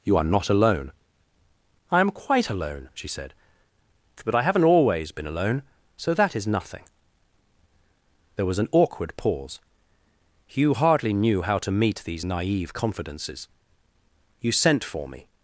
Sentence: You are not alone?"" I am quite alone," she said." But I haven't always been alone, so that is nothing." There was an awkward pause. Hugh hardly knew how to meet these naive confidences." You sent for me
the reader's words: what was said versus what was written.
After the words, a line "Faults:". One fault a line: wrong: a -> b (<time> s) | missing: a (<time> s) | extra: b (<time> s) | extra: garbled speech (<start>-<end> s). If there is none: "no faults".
You are not alone?"" I am quite alone," she said." But I haven't always been alone, so that is nothing." There was an awkward pause. Hugh hardly knew how to meet these naive confidences." You sent for me
Faults:
no faults